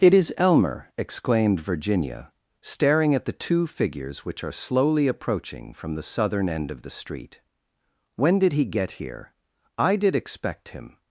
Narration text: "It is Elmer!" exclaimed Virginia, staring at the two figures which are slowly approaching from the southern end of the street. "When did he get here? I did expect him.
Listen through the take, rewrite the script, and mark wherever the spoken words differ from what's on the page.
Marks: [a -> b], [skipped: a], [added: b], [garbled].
"It is Elmer!" exclaimed Virginia, staring at the two figures which are slowly approaching from the southern end of the street. "When did he get here? I did expect him.